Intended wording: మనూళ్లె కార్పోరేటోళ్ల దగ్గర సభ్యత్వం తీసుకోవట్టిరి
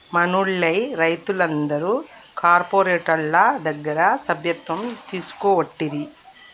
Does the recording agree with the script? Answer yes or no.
no